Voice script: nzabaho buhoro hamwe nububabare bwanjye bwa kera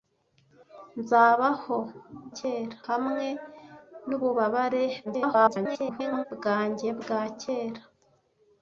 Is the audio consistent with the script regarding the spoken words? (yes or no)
no